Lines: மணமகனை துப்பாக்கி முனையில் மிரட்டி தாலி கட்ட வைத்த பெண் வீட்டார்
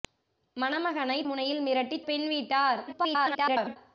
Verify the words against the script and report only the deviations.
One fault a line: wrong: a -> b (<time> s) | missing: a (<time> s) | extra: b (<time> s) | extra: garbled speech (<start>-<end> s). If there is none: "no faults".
missing: துப்பாக்கி (1.2 s)
missing: தாலி கட்ட வைத்த (2.0 s)
extra: garbled speech (2.9-3.8 s)